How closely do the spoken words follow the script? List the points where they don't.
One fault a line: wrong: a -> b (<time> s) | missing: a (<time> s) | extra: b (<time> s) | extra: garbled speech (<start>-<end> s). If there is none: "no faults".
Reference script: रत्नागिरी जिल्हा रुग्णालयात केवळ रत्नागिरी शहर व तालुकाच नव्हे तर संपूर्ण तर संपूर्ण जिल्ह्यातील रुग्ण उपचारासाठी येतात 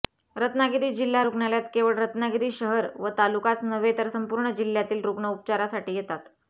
missing: तर संपूर्ण (4.5 s)